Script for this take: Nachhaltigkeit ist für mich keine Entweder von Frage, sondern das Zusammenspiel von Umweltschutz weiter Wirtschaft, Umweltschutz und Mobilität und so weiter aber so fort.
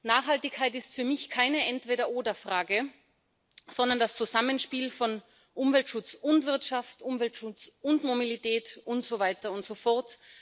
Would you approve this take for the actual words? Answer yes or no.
no